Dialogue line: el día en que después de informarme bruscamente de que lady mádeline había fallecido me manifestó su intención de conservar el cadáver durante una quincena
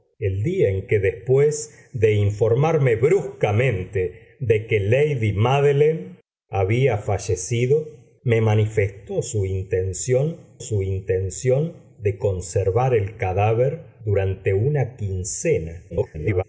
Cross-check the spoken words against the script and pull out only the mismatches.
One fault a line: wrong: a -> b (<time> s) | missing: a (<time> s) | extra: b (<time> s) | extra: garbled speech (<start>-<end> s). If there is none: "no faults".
extra: su intención (10.6 s)
extra: garbled speech (15.9-16.4 s)